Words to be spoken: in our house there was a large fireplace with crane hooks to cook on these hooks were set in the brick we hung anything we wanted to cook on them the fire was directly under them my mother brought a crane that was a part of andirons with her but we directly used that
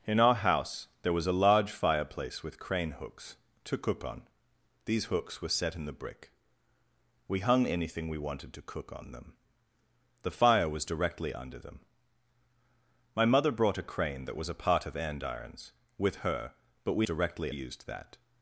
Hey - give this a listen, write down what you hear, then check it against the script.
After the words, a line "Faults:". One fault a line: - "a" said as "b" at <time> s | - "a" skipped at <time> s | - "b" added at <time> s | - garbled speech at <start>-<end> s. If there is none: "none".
in our house there was a large fireplace with crane hooks to cook on these hooks were set in the brick we hung anything we wanted to cook on them the fire was directly under them my mother brought a crane that was a part of andirons with her but we directly used that
Faults:
none